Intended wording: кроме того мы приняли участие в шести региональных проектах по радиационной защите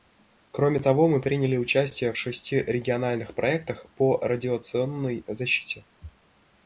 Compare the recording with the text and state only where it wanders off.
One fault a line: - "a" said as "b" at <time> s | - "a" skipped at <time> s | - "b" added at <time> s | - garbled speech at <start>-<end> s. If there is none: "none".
none